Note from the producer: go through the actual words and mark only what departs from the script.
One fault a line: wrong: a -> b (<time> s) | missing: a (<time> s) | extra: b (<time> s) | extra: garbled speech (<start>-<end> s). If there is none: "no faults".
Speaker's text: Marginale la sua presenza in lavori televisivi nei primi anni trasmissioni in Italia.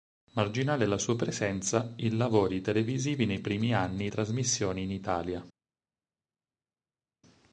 no faults